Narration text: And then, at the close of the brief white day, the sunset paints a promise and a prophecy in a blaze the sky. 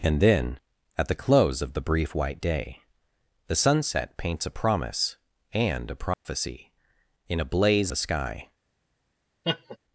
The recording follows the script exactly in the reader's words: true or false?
true